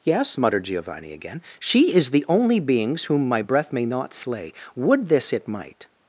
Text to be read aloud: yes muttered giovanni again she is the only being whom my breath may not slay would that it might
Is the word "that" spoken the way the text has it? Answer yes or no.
no